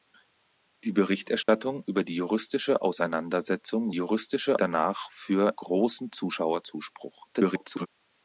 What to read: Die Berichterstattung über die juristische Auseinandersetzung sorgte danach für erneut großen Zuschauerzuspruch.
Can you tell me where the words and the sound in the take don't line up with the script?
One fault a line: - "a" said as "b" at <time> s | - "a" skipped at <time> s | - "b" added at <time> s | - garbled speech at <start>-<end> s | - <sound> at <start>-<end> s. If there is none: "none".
- dropout at 1.4-1.5 s
- "sorgte" said as "juristische" at 3.9 s
- "erneut" skipped at 5.5 s
- garbled speech at 7.3-7.9 s